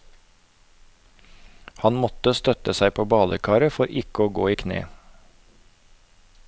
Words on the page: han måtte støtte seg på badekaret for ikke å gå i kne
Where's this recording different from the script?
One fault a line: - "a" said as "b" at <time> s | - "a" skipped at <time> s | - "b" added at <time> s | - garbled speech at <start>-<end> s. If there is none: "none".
none